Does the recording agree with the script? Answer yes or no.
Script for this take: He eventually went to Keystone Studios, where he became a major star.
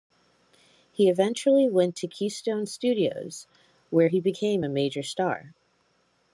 yes